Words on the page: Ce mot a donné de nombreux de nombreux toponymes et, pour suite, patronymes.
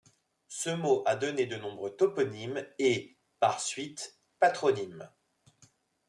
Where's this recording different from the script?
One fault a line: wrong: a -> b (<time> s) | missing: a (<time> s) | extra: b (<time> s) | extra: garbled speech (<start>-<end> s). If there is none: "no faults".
missing: de nombreux (1.9 s)
wrong: pour -> par (3.4 s)